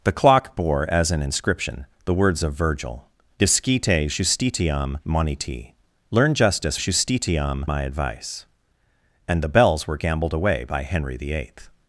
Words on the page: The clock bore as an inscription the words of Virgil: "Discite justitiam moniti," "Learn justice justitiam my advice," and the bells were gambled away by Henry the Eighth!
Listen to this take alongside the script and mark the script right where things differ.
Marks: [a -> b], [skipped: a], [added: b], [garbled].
The clock bore as an inscription the words of Virgil: "Discite justitiam moniti," "Learn justice justitiam my advice," and the bells were gambled away by Henry the Eighth!